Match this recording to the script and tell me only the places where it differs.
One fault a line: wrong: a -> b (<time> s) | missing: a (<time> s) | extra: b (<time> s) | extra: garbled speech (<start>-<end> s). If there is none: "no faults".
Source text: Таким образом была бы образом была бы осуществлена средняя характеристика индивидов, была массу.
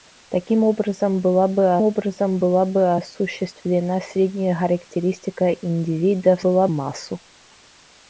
no faults